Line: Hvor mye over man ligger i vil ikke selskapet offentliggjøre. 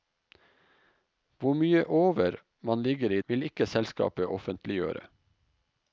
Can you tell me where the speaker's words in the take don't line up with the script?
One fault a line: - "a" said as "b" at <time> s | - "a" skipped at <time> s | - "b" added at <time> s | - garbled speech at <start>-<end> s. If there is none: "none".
none